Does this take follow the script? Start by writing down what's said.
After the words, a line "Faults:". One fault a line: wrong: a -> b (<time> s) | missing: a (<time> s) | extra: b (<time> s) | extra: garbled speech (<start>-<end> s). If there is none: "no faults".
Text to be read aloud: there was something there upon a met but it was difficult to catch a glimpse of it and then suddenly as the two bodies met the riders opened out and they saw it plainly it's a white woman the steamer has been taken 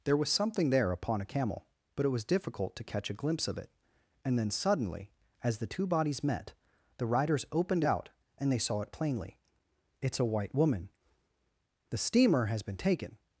there was something there upon a camel but it was difficult to catch a glimpse of it and then suddenly as the two bodies met the riders opened out and they saw it plainly it's a white woman the steamer has been taken
Faults:
wrong: met -> camel (1.2 s)